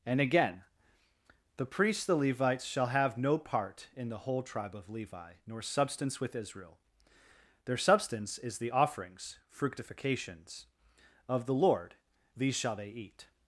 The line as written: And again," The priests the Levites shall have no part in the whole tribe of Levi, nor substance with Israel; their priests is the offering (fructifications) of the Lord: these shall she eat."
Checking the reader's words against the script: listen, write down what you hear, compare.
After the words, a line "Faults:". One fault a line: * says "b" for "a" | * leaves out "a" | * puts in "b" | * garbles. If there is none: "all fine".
And again," The priests the Levites shall have no part in the whole tribe of Levi, nor substance with Israel; their substance is the offerings (fructifications) of the Lord: these shall they eat."
Faults:
* says "substance" for "priests"
* says "offerings" for "offering"
* says "they" for "she"